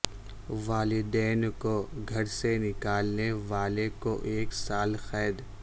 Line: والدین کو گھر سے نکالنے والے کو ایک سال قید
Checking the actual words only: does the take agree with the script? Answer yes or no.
yes